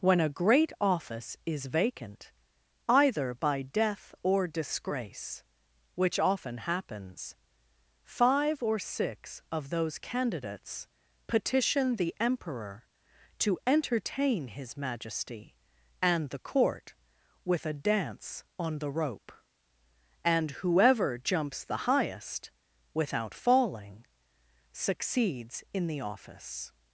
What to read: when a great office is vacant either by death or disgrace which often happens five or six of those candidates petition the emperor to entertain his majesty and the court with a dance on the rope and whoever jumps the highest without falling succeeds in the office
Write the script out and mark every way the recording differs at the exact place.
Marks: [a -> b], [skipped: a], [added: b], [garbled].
when a great office is vacant either by death or disgrace which often happens five or six of those candidates petition the emperor to entertain his majesty and the court with a dance on the rope and whoever jumps the highest without falling succeeds in the office